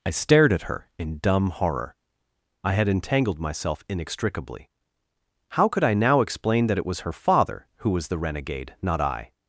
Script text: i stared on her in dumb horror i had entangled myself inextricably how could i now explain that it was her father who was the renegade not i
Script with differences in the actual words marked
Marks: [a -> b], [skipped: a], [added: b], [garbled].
i stared [on -> at] her in dumb horror i had entangled myself inextricably how could i now explain that it was her father who was the renegade not i